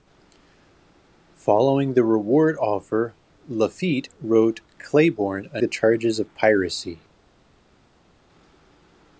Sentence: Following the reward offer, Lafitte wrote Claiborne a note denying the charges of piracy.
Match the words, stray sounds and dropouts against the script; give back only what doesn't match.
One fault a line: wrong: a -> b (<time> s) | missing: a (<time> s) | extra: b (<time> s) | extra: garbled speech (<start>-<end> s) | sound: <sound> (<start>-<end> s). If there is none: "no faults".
missing: note denying (5.6 s)